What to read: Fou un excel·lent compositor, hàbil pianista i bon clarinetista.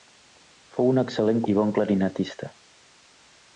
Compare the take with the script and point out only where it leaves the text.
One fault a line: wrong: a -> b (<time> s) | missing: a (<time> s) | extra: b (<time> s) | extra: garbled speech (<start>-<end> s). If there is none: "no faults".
missing: compositor hàbil pianista (1.4 s)